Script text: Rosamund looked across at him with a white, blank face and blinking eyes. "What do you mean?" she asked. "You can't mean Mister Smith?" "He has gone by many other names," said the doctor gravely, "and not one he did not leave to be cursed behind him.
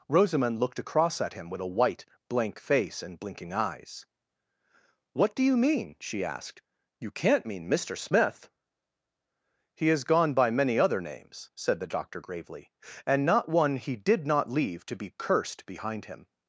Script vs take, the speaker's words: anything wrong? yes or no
no